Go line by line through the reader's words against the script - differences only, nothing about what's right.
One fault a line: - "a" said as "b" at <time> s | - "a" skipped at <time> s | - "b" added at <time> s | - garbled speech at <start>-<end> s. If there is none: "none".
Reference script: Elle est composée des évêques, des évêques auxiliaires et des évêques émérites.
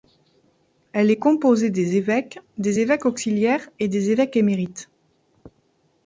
none